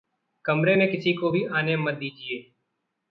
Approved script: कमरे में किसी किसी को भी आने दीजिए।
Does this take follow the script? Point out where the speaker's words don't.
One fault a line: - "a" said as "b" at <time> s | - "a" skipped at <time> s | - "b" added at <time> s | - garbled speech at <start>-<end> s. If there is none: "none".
- "किसी" skipped at 1.1 s
- "मत" added at 1.8 s